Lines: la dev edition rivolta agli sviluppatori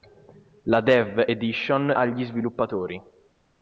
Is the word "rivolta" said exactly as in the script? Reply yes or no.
no